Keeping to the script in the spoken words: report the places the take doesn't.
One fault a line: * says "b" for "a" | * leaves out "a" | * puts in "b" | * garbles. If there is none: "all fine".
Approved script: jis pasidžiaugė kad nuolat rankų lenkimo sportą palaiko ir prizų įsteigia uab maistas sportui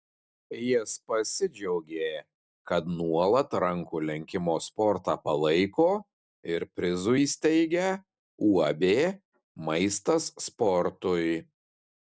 all fine